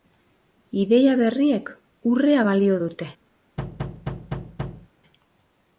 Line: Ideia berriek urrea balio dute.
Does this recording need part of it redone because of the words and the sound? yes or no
yes